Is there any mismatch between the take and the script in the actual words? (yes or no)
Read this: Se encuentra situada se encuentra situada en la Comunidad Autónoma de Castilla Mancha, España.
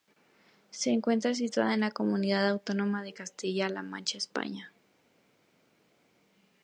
yes